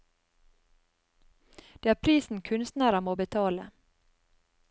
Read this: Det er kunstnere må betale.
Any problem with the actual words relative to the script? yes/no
yes